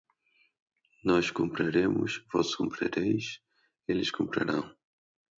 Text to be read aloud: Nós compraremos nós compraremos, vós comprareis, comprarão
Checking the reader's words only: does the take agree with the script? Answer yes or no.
no